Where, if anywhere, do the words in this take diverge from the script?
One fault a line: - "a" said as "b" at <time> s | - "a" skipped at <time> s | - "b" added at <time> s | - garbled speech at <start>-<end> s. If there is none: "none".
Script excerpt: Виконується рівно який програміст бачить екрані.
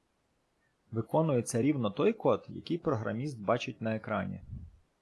- "той код" added at 1.9 s
- "на" added at 3.8 s